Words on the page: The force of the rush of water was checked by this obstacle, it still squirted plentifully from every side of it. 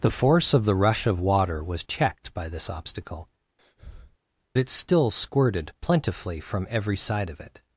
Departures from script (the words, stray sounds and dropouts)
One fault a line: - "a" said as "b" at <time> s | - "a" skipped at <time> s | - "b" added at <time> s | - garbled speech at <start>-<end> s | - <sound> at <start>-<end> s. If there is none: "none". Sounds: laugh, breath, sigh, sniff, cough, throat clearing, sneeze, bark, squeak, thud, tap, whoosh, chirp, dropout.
- breath at 3.6-4.2 s